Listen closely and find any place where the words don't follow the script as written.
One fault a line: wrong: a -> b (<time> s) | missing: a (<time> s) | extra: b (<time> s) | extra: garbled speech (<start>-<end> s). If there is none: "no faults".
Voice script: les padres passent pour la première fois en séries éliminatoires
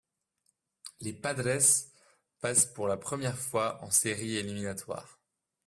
no faults